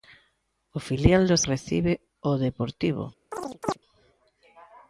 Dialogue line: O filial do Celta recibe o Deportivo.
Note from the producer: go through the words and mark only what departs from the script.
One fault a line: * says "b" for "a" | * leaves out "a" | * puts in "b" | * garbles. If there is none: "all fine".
* leaves out "Celta"